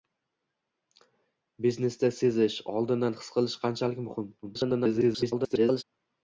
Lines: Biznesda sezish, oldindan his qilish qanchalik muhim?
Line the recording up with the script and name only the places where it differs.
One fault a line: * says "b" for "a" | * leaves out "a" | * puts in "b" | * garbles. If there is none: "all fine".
* garbles